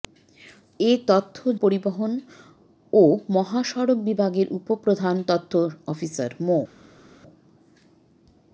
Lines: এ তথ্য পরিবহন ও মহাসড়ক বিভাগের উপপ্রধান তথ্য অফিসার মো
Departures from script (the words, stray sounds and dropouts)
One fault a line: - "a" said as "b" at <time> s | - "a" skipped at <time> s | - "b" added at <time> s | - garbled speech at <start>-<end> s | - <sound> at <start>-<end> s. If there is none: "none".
none